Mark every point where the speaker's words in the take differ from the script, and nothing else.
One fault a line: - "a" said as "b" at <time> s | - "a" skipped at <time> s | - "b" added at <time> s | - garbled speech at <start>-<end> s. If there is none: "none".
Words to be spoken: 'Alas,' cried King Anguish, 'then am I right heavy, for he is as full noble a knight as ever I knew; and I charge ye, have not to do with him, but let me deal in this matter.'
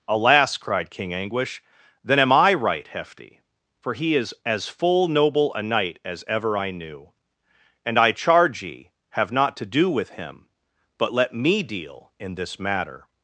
- "heavy" said as "hefty" at 2.9 s